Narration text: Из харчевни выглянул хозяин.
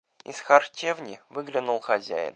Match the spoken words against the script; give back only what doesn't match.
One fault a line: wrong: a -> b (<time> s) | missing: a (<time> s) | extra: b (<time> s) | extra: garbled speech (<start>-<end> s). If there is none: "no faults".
no faults